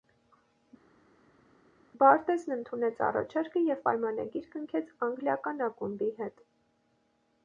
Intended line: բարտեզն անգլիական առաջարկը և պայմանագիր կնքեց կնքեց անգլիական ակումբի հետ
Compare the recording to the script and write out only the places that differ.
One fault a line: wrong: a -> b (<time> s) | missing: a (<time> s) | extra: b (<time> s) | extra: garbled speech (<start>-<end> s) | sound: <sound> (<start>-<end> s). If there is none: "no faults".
wrong: անգլիական -> ընդունեց (2.5 s)
missing: կնքեց (4.9 s)